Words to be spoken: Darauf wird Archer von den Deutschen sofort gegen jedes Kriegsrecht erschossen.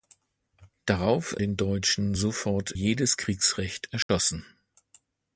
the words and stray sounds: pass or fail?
fail